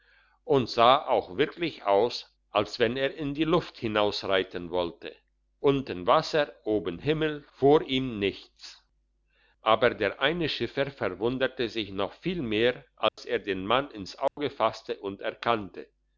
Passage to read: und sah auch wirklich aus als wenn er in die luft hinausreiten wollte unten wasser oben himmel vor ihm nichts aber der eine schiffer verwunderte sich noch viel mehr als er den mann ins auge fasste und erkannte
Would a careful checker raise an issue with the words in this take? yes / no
no